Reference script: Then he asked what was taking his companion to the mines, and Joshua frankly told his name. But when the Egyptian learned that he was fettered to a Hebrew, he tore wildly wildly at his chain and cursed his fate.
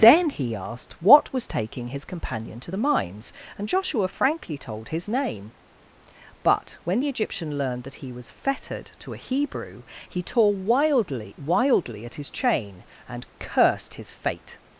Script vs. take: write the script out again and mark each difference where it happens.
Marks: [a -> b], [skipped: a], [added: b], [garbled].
Then he asked what was taking his companion to the mines, and Joshua frankly told his name. But when the Egyptian learned that he was fettered to a Hebrew, he tore wildly wildly at his chain and cursed his fate.